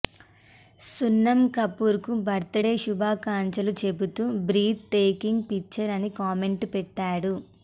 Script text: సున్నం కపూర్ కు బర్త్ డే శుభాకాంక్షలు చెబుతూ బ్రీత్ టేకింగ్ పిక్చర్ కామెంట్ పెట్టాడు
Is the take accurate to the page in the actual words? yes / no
no